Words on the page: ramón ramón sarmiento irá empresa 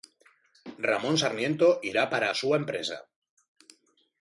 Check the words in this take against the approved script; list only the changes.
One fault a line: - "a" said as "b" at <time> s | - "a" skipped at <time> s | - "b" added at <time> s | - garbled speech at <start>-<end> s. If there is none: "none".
- "ramón" skipped at 1.1 s
- "para a súa" added at 2.1 s